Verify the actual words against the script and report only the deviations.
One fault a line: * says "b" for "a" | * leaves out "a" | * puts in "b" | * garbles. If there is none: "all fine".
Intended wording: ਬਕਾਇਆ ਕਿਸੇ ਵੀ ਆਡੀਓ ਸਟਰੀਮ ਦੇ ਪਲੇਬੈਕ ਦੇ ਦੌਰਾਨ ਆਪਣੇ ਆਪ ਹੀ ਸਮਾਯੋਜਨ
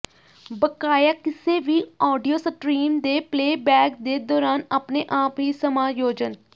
all fine